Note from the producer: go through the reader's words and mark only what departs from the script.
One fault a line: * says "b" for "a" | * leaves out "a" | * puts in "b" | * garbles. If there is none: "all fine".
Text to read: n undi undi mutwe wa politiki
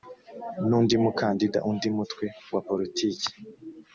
* puts in "mukandida"